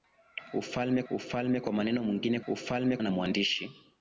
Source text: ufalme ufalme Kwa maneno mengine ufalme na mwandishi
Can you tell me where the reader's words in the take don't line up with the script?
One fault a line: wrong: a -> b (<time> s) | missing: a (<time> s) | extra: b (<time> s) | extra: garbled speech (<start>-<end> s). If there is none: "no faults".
no faults